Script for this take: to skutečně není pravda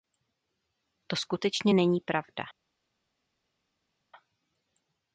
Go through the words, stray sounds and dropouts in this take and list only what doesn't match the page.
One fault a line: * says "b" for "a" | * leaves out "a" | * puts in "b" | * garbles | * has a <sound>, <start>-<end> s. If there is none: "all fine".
all fine